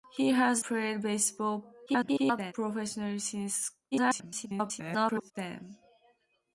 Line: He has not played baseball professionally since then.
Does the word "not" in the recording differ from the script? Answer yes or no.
yes